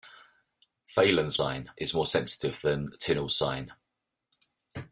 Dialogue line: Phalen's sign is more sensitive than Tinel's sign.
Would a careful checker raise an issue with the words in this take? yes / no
no